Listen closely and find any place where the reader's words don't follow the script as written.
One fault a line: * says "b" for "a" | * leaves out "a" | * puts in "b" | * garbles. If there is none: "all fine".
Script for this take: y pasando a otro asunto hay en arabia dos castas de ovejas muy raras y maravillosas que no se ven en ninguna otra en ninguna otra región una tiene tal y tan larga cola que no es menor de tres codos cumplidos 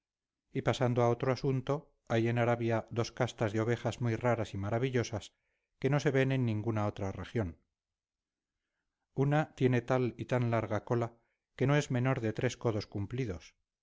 * leaves out "en ninguna otra"